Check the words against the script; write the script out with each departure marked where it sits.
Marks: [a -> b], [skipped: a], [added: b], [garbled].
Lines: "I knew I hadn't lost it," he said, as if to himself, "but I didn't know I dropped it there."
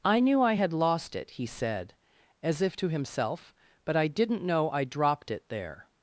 "I knew I [hadn't -> had] lost it," he said, as if to himself, "but I didn't know I dropped it there."